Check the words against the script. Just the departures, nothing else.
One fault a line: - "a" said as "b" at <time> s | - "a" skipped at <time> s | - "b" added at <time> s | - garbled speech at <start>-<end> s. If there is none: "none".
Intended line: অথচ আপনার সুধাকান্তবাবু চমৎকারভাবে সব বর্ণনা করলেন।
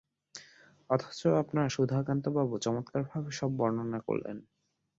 none